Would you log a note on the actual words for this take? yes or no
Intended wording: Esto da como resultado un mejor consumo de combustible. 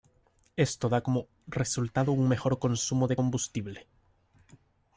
no